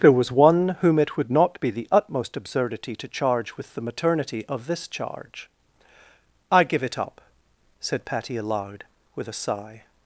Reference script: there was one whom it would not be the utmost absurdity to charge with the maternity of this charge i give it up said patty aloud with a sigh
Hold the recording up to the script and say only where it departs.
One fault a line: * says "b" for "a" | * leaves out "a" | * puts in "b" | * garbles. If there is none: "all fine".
all fine